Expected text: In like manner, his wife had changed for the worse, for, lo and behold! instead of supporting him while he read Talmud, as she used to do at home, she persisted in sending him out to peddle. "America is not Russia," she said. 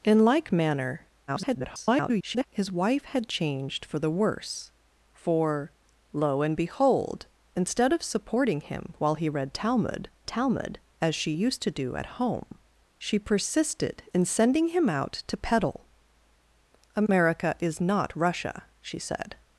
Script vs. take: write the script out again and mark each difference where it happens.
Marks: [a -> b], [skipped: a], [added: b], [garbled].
In like manner, [garbled] his wife had changed for the worse, for, lo and behold! instead of supporting him while he read Talmud, [added: Talmud] as she used to do at home, she persisted in sending him out to peddle. "America is not Russia," she said.